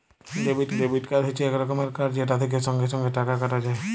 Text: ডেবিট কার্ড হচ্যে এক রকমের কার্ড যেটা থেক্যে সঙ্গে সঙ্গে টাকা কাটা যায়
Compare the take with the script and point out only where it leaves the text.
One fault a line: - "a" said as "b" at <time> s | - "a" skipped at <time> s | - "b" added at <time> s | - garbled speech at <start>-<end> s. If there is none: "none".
- "ডেবিট" added at 0.8 s